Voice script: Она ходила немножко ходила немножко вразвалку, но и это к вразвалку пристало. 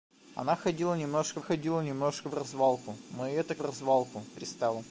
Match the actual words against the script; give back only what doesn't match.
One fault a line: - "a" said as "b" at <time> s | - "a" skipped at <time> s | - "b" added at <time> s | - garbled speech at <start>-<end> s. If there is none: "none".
none